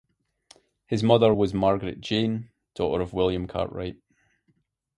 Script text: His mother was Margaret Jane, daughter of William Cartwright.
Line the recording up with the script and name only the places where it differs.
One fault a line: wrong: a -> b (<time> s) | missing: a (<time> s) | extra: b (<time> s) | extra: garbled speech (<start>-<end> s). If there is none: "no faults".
no faults